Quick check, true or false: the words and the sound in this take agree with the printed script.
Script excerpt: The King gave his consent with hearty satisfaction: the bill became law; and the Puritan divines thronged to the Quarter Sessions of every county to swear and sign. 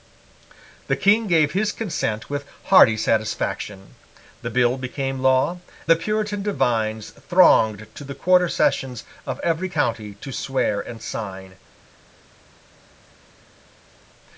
false